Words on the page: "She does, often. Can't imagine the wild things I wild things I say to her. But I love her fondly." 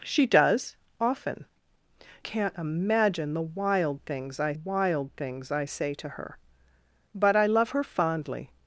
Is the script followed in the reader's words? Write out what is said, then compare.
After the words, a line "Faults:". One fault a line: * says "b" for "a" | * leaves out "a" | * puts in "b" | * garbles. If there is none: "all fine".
"She does, often. Can't imagine the wild things I wild things I say to her. But I love her fondly."
Faults:
all fine